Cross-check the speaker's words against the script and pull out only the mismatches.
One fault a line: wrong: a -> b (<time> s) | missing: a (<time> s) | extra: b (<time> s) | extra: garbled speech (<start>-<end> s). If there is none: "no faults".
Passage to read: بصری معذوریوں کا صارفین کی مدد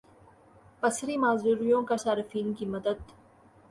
no faults